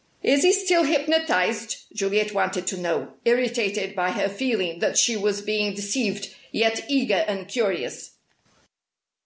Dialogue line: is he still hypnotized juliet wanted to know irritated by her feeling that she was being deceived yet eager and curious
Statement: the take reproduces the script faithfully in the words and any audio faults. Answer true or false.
true